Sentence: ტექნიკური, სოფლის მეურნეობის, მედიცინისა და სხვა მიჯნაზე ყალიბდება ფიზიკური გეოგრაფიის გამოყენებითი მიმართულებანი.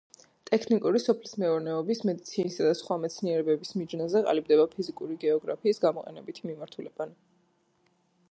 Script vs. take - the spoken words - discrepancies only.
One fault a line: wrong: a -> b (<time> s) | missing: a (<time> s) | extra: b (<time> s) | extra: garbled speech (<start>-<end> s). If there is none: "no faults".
extra: მეცნიერებების (3.0 s)